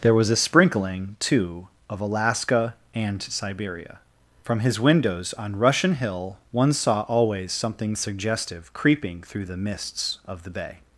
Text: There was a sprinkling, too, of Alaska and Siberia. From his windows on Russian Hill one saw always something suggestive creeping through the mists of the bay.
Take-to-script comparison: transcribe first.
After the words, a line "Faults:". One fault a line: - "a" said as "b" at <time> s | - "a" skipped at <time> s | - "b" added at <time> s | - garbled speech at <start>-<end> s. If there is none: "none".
There was a sprinkling, too, of Alaska and Siberia. From his windows on Russian Hill one saw always something suggestive creeping through the mists of the bay.
Faults:
none